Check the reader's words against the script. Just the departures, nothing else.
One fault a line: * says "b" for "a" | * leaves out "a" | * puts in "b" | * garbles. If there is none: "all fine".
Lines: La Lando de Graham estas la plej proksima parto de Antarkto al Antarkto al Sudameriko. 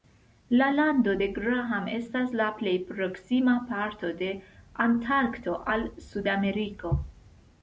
* leaves out "Antarkto al"